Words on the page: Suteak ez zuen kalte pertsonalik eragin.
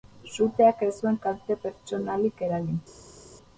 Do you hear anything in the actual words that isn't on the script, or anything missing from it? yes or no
no